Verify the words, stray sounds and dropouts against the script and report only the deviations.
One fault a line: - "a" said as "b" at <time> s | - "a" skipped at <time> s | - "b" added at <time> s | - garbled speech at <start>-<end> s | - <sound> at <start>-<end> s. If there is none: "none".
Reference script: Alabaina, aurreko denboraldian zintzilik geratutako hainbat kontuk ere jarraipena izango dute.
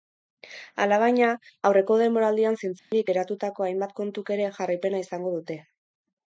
- dropout at 2.8-2.9 s